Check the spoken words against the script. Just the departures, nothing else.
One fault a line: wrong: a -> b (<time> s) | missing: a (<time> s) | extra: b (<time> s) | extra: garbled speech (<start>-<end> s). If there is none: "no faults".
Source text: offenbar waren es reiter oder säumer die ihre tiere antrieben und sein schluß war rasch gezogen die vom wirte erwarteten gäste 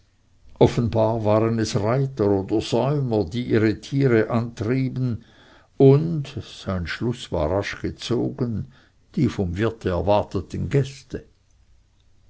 no faults